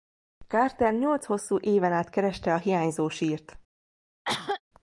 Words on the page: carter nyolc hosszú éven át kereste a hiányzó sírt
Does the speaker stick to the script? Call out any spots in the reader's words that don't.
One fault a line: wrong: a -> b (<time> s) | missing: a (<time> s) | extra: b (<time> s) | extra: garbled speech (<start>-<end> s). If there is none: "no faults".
no faults